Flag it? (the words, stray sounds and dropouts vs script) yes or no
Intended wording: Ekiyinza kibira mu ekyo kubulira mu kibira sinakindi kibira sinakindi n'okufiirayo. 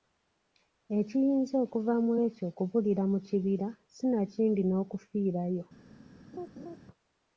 yes